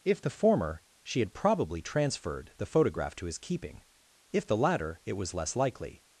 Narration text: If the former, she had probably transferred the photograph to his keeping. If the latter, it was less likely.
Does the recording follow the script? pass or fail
pass